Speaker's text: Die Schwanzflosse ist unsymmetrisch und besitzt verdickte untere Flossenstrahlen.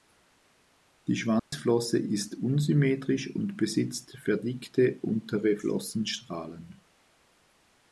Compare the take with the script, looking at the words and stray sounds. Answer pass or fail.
fail